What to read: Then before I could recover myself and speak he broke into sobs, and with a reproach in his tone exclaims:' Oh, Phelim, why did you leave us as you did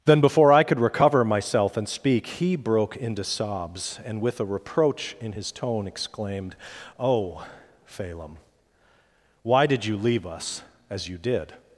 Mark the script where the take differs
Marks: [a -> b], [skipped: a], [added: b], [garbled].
Then before I could recover myself and speak he broke into sobs, and with a reproach in his tone [exclaims:' -> exclaimed] Oh, Phelim, why did you leave us as you did